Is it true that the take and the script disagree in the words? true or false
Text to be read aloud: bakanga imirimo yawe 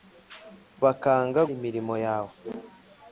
false